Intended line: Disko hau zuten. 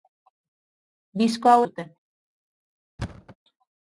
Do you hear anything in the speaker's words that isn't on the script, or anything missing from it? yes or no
no